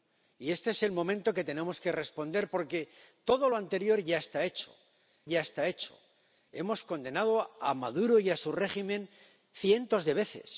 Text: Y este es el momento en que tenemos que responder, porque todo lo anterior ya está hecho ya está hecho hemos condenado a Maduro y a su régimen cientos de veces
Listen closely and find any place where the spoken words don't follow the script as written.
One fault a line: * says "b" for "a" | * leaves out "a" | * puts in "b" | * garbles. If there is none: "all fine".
all fine